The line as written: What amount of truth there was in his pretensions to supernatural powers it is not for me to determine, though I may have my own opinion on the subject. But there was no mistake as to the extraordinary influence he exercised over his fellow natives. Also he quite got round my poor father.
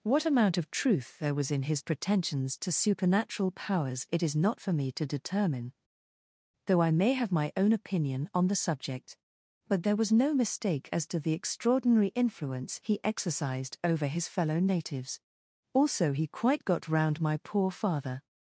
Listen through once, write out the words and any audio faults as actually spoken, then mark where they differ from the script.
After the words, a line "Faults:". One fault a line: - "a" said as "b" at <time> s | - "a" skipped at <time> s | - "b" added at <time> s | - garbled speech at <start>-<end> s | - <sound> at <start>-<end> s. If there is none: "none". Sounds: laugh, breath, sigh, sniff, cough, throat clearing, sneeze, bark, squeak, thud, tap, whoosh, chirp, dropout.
What amount of truth there was in his pretensions to supernatural powers it is not for me to determine, though I may have my own opinion on the subject. But there was no mistake as to the extraordinary influence he exercised over his fellow natives. Also he quite got round my poor father.
Faults:
none